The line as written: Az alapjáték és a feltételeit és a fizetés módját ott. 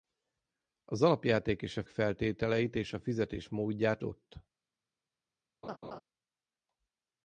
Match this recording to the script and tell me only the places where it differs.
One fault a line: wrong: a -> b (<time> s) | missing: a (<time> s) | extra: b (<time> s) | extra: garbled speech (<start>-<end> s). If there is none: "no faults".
no faults